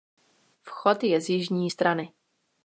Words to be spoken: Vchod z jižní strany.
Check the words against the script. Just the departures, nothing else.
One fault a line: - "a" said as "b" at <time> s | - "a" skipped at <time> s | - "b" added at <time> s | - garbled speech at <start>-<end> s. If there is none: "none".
- "je" added at 1.0 s